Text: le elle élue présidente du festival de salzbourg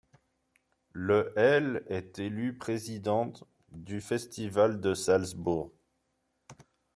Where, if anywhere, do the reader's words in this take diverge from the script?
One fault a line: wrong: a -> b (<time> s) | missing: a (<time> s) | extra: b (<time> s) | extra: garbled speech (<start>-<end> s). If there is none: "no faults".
extra: est (1.9 s)